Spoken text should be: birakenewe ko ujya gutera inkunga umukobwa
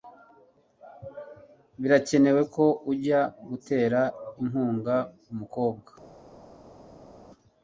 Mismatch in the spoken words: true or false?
false